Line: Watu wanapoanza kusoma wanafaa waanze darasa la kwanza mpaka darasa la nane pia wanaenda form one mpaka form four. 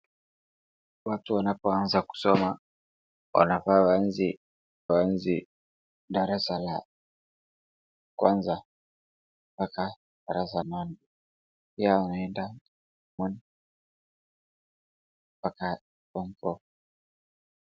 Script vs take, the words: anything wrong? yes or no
yes